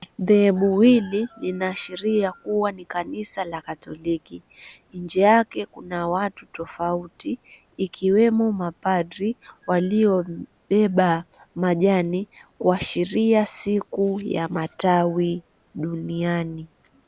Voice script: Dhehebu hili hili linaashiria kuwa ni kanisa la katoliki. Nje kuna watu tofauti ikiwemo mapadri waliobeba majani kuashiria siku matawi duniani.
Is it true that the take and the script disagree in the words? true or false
true